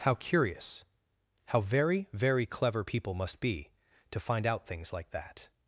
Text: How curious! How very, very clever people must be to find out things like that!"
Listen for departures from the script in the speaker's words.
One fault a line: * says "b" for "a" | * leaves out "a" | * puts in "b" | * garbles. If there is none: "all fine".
all fine